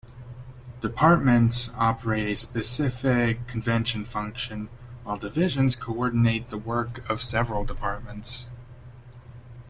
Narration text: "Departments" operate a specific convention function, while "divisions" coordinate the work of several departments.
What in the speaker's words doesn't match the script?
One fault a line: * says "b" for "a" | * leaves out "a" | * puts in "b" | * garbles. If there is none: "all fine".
all fine